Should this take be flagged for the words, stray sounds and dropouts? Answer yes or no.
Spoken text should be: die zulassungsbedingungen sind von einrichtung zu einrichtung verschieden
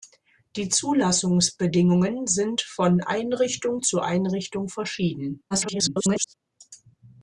yes